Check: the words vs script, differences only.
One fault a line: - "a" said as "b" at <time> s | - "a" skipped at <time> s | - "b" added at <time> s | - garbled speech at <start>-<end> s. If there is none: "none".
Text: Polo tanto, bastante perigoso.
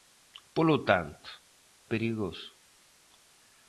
- "bastante" skipped at 1.3 s